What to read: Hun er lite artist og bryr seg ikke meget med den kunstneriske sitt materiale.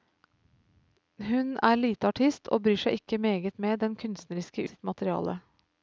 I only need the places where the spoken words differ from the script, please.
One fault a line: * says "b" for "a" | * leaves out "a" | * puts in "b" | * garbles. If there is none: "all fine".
all fine